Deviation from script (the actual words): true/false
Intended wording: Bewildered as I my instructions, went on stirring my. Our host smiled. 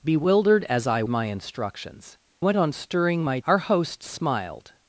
false